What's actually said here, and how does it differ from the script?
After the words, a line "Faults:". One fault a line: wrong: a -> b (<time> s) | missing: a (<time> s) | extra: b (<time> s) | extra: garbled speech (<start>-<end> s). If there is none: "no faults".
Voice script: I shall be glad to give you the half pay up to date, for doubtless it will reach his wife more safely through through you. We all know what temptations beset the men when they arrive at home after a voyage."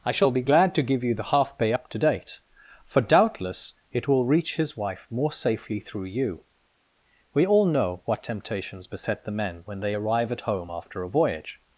I shall be glad to give you the half pay up to date, for doubtless it will reach his wife more safely through you. We all know what temptations beset the men when they arrive at home after a voyage."
Faults:
missing: through (6.1 s)